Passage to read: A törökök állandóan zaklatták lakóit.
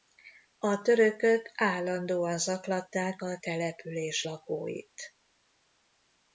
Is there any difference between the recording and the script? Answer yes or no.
yes